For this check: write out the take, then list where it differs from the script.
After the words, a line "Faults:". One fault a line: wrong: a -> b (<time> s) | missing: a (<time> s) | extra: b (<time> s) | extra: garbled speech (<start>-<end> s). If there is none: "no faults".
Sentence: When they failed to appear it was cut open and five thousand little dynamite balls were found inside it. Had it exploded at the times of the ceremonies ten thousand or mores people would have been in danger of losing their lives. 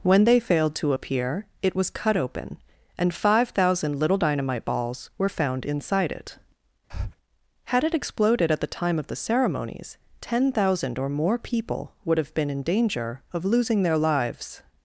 When they failed to appear it was cut open and five thousand little dynamite balls were found inside it. Had it exploded at the time of the ceremonies ten thousand or more people would have been in danger of losing their lives.
Faults:
wrong: times -> time (8.7 s)
wrong: mores -> more (11.1 s)